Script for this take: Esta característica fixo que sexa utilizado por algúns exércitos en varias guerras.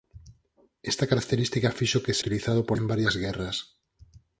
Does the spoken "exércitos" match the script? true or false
false